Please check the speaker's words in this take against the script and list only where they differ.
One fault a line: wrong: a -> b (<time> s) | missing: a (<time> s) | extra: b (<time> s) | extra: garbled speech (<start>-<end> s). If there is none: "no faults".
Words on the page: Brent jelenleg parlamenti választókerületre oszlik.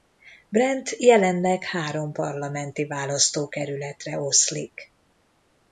extra: három (1.6 s)